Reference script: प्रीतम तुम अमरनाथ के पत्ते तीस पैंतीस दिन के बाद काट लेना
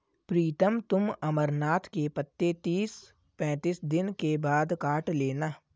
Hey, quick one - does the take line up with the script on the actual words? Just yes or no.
yes